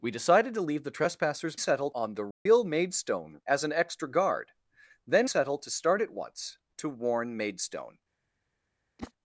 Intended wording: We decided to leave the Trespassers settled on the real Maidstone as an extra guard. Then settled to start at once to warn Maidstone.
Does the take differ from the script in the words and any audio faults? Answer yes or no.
yes